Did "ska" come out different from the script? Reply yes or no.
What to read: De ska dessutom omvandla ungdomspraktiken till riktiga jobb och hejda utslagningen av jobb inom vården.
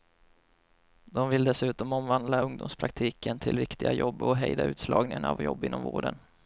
yes